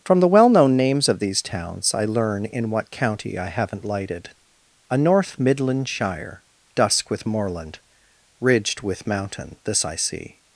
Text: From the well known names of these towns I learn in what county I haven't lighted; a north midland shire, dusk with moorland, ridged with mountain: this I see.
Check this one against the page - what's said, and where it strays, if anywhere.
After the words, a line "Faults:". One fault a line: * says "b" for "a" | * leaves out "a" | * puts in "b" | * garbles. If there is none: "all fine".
From the well known names of these towns I learn in what county I haven't lighted; a north midland shire, dusk with moorland, ridged with mountain: this I see.
Faults:
all fine